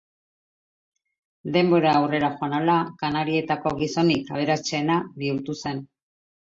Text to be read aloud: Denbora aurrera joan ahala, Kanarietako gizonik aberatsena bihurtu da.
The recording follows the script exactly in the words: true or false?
false